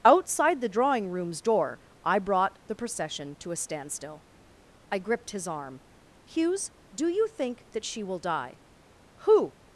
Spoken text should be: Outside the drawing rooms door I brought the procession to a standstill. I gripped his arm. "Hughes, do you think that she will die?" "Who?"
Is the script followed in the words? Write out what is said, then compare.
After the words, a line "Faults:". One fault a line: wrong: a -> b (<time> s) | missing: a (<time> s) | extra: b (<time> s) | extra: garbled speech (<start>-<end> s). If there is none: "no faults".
Outside the drawing rooms door I brought the procession to a standstill. I gripped his arm. "Hughes, do you think that she will die?" "Who?"
Faults:
no faults